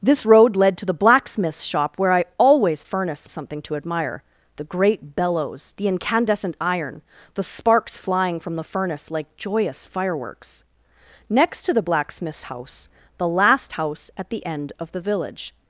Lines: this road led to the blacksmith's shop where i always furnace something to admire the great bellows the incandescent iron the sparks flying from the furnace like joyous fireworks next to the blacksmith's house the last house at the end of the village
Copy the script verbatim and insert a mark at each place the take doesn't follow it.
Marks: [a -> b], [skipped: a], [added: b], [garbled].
this road led to the blacksmith's shop where i always furnace something to admire the great bellows the incandescent iron the sparks flying from the furnace like joyous fireworks next to the blacksmith's house the last house at the end of the village